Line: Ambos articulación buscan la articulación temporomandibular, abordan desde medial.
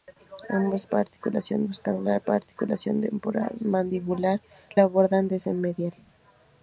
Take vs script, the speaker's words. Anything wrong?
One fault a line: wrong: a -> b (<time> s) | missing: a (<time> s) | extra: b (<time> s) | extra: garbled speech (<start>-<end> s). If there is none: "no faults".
no faults